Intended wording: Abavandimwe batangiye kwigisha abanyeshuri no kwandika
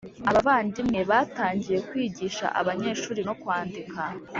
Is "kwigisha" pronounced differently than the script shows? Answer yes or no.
no